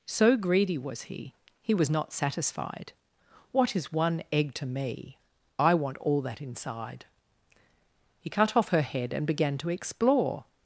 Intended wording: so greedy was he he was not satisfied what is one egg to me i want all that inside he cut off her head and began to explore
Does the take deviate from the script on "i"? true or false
false